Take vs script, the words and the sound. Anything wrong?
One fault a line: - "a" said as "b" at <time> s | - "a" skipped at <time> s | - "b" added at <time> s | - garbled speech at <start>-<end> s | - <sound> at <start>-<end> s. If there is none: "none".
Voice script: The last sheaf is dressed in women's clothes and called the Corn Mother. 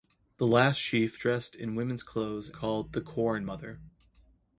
- "is" skipped at 1.2 s
- "and" skipped at 2.5 s